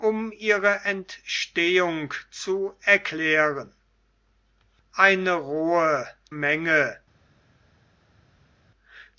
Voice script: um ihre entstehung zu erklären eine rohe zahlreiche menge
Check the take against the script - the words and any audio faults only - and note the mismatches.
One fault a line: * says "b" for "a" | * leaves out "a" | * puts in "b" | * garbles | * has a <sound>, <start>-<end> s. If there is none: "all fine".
* leaves out "zahlreiche"